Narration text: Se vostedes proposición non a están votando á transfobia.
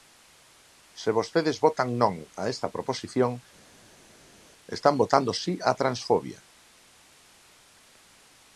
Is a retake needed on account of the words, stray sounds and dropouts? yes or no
yes